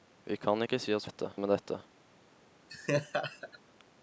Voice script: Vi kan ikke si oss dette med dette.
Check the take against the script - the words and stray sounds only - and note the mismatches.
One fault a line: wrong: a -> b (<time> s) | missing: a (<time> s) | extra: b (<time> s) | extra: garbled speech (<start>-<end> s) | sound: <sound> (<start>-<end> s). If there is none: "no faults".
sound: laugh (2.7-3.6 s)